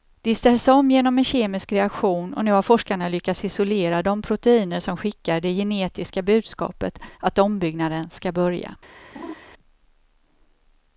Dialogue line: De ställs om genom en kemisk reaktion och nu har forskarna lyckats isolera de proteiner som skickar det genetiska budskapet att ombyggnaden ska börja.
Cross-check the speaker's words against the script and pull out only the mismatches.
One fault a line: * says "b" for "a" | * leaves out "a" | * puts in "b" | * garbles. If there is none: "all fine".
all fine